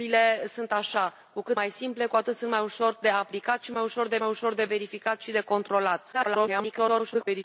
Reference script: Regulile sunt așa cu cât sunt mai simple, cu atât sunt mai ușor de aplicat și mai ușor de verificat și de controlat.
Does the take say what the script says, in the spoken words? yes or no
no